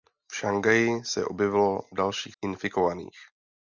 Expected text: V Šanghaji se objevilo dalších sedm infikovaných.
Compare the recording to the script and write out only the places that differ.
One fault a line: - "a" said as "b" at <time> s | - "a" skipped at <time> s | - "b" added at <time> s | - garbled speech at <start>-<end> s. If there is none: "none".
- "sedm" skipped at 2.4 s